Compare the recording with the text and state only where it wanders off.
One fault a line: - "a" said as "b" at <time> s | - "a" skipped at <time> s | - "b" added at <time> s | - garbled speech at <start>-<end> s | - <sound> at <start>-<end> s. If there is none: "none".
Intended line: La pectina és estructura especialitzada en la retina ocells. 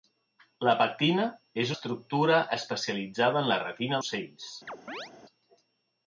- chirp at 4.7-5.1 s